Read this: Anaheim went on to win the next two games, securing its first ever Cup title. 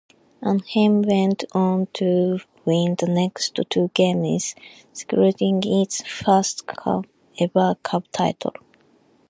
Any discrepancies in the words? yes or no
no